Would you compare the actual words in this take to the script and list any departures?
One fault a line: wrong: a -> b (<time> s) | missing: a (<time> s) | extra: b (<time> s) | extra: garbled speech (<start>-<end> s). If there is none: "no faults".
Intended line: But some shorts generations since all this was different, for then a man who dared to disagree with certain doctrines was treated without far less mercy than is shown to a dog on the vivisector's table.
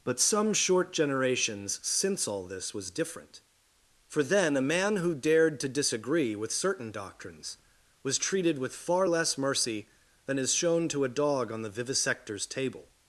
wrong: shorts -> short (0.5 s)
wrong: without -> with (8.6 s)